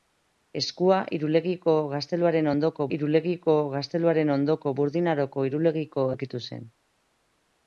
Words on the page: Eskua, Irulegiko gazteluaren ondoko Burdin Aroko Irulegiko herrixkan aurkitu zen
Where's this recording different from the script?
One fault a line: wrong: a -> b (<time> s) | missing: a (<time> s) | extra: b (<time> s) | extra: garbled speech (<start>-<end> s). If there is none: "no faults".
extra: Irulegiko gazteluaren ondoko (3.0 s)
missing: herrixkan (6.1 s)